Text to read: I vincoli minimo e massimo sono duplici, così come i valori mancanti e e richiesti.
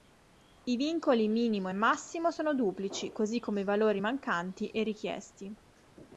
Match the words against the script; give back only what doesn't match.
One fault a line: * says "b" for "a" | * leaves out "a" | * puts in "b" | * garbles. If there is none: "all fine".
* leaves out "e"